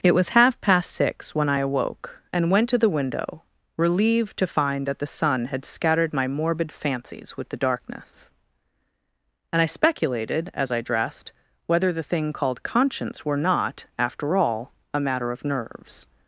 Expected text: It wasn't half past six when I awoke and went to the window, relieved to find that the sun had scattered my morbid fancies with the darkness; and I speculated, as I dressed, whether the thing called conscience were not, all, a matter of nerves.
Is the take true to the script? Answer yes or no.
no